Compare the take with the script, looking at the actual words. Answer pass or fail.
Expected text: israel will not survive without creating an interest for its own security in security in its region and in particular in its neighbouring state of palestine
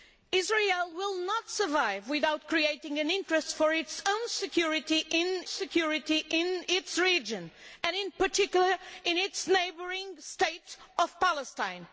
pass